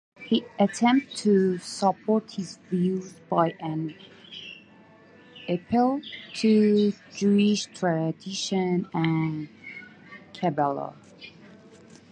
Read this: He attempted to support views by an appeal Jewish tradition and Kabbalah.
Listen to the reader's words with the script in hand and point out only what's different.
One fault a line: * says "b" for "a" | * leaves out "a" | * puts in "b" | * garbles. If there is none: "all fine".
* puts in "his"
* puts in "to"